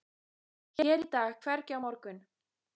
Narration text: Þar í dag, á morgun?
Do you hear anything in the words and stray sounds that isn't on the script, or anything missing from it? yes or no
yes